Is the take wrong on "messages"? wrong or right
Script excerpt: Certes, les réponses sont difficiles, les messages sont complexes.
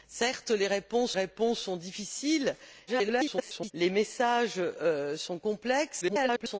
right